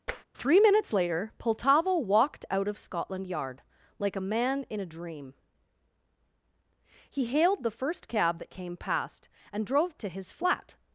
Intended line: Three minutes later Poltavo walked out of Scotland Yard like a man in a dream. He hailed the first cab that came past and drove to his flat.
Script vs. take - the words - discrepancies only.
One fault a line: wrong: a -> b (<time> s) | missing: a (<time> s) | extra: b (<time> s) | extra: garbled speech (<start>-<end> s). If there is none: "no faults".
no faults